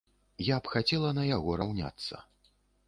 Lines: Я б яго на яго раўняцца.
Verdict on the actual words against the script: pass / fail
fail